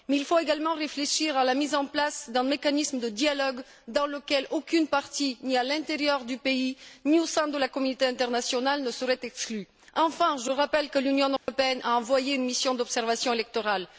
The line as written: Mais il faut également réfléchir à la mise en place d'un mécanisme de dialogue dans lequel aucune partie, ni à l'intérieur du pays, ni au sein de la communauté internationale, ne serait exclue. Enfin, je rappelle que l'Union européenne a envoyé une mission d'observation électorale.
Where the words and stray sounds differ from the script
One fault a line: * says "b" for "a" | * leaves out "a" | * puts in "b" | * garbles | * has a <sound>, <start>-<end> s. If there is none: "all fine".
* has a dropout, 11.4-11.5 s